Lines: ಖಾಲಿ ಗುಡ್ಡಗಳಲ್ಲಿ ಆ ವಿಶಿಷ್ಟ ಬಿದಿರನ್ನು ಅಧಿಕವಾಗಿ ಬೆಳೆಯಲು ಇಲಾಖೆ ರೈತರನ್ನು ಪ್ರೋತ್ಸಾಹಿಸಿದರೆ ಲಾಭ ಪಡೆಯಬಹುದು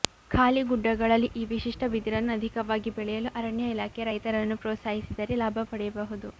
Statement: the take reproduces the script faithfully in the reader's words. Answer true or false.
false